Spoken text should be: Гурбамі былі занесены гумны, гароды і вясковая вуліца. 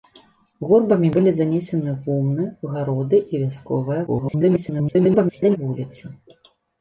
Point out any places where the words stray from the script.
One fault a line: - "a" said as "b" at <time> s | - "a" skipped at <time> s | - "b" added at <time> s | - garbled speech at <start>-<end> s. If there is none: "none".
- garbled speech at 4.1-5.6 s